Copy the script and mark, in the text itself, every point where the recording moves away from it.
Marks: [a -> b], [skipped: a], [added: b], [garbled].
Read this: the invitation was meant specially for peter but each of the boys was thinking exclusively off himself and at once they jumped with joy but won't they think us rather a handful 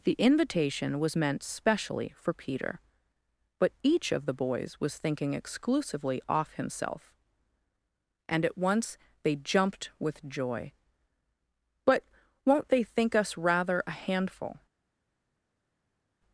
the invitation was meant specially for peter but each of the boys was thinking exclusively off himself and at once they jumped with joy but won't they think us rather a handful